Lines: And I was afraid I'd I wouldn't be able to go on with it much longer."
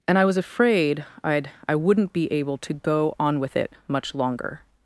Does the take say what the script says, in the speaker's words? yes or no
yes